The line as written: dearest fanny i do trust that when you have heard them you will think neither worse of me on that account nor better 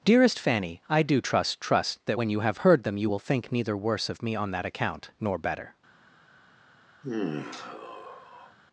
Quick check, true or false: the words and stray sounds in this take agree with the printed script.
false